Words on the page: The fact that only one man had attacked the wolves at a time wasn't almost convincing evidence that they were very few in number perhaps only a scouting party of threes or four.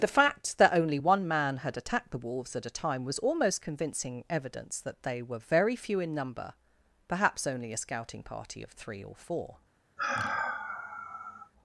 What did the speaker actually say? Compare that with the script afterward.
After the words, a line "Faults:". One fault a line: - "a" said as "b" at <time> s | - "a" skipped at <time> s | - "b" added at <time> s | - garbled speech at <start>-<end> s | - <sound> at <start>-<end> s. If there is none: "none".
The fact that only one man had attacked the wolves at a time was almost convincing evidence that they were very few in number perhaps only a scouting party of three or four.
Faults:
- "wasn't" said as "was" at 3.0 s
- "threes" said as "three" at 8.7 s
- sigh at 10.0-11.5 s